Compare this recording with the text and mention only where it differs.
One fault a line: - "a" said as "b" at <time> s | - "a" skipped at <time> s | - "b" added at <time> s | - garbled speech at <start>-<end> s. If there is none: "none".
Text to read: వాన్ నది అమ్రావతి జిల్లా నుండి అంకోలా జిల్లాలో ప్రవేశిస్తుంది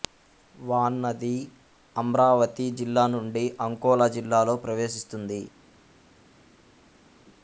none